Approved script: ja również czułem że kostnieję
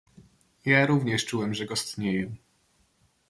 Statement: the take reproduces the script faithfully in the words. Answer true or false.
true